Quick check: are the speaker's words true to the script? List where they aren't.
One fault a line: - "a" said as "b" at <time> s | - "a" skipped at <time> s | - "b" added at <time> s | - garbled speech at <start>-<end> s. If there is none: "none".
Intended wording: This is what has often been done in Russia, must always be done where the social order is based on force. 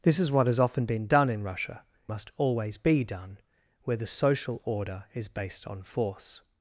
none